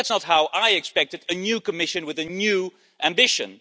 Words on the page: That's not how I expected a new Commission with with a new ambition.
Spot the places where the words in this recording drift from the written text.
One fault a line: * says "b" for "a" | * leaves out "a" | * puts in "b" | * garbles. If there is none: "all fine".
* leaves out "with"